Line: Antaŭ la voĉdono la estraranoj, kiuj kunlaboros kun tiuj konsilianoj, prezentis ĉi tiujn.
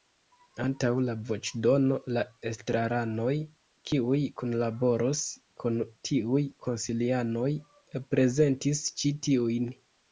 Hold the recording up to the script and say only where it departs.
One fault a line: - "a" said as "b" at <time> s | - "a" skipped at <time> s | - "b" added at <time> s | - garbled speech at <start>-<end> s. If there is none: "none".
none